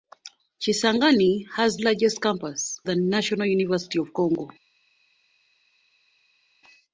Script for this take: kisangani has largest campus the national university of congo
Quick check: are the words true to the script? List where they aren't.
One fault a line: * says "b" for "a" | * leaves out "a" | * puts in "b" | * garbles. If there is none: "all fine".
all fine